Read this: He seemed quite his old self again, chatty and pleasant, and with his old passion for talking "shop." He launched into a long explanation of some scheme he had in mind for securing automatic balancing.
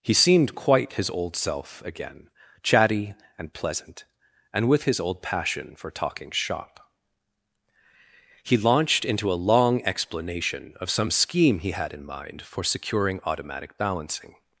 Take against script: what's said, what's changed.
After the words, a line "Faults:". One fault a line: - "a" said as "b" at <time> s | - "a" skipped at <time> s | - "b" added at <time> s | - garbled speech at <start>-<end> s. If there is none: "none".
He seemed quite his old self again, chatty and pleasant, and with his old passion for talking "shop." He launched into a long explanation of some scheme he had in mind for securing automatic balancing.
Faults:
none